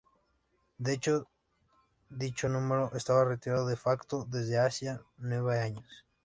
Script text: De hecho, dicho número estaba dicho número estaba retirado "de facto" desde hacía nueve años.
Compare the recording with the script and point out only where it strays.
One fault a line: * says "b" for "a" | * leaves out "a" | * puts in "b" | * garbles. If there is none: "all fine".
* leaves out "dicho número estaba"